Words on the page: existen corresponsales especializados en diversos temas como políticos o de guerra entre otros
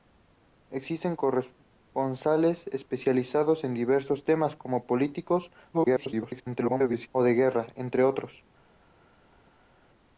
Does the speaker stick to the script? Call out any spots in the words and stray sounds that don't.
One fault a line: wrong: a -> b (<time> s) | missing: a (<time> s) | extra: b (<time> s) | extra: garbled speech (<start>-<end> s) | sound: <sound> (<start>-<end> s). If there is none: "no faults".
extra: garbled speech (5.7-7.1 s)